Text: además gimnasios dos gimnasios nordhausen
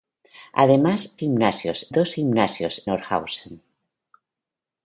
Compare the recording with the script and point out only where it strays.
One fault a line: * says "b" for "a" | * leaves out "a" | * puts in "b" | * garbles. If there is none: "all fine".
all fine